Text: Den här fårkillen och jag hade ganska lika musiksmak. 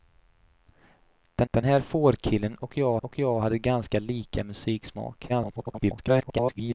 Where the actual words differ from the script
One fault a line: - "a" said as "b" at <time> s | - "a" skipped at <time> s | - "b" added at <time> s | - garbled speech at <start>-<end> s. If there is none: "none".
- "den" added at 1.5 s
- "och jag" added at 3.0 s
- garbled speech at 5.3-6.7 s